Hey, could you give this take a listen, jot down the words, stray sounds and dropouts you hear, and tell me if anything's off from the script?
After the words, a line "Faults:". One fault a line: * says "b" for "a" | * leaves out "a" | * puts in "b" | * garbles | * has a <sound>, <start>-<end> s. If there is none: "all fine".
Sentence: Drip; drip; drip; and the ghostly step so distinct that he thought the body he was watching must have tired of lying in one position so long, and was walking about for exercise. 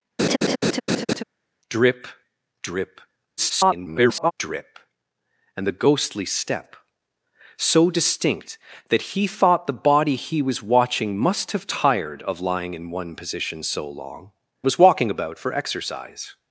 Drip; drip; [garbled] drip; and the ghostly step so distinct that he thought the body he was watching must have tired of lying in one position so long, was walking about for exercise.
Faults:
* has a laugh, 0.2-1.2 s
* garbles
* leaves out "and"